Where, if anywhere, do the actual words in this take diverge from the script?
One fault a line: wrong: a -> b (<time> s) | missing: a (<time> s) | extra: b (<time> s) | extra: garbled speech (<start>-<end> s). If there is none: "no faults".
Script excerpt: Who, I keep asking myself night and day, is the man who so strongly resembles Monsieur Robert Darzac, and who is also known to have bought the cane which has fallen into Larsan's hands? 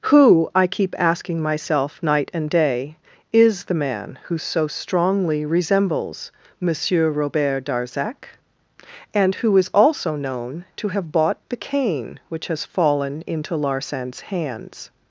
no faults